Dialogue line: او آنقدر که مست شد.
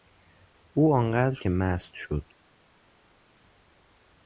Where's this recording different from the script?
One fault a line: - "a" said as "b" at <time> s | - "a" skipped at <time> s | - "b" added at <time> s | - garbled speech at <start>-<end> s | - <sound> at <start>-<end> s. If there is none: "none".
none